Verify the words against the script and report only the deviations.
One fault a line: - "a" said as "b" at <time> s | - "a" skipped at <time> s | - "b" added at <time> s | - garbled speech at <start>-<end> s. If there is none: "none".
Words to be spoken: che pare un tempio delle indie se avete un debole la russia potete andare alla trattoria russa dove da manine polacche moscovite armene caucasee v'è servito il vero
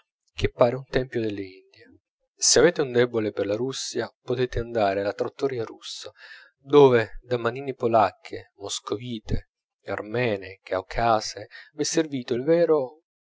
- "per" added at 3.3 s